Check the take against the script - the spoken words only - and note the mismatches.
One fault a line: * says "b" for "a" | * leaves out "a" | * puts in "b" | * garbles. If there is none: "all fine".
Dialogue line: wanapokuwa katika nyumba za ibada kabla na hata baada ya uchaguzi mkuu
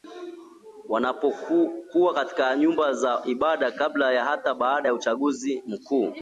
all fine